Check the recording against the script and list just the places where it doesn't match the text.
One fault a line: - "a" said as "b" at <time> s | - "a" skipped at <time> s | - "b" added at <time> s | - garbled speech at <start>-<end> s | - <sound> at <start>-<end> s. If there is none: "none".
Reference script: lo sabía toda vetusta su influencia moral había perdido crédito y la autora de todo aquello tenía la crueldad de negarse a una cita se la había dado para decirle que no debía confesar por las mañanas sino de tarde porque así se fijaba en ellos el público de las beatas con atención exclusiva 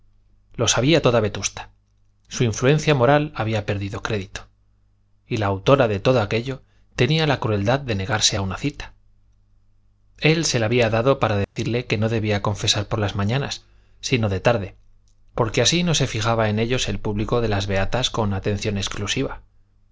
- "él" added at 10.2 s
- dropout at 11.4-11.6 s
- "no" added at 15.8 s